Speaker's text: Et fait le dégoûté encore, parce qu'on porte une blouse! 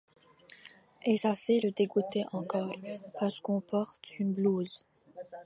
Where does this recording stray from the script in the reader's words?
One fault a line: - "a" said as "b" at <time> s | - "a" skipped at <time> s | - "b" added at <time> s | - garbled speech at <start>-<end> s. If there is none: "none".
- "ça" added at 1.1 s